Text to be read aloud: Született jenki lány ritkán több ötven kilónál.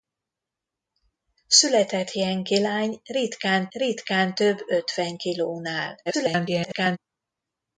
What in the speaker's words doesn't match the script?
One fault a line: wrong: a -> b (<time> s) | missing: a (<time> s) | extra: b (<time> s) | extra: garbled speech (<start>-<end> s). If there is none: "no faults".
extra: ritkán (3.7 s)
extra: garbled speech (6.1-7.0 s)